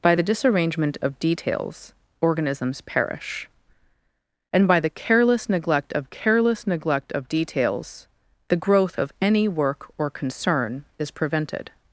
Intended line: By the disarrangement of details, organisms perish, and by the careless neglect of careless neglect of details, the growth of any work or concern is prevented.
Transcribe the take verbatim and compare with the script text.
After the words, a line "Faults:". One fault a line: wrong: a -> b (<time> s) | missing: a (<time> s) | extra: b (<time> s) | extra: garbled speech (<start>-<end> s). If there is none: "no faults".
By the disarrangement of details, organisms perish, and by the careless neglect of careless neglect of details, the growth of any work or concern is prevented.
Faults:
no faults